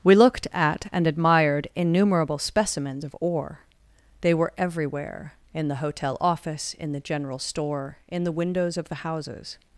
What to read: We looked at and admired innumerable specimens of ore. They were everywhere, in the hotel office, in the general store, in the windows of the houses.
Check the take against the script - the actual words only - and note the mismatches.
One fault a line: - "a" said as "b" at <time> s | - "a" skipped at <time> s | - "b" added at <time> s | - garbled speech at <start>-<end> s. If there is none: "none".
none